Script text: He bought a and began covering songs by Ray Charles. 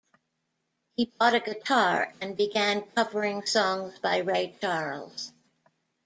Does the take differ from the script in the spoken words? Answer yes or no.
yes